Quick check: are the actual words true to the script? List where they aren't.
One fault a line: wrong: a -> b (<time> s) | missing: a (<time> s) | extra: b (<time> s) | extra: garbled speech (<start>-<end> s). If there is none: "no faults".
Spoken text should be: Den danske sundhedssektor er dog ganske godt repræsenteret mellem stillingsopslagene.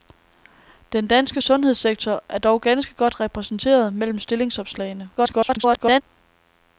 extra: garbled speech (5.2-6.0 s)